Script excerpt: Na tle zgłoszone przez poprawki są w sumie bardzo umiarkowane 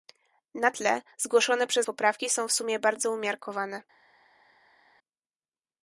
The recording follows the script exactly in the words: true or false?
true